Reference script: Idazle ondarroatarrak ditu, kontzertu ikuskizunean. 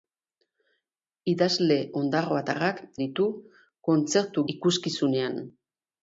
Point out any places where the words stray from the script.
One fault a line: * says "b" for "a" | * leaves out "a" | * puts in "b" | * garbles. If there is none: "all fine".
all fine